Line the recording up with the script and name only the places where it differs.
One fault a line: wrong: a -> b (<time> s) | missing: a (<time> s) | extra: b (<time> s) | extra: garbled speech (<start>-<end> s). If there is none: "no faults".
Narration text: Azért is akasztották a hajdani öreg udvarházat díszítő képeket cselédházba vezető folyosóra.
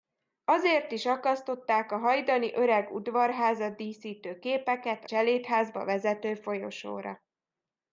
no faults